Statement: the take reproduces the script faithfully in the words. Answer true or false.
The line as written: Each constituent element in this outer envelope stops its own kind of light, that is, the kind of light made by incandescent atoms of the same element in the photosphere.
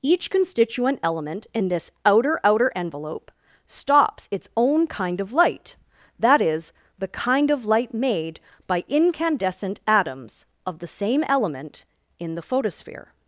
false